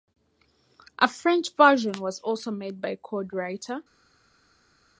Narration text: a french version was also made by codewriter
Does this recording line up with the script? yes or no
yes